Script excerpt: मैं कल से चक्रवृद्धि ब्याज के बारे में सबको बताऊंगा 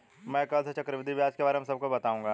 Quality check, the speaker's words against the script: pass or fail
pass